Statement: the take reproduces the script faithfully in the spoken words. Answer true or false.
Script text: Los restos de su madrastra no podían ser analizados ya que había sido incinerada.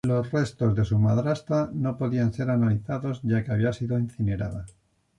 true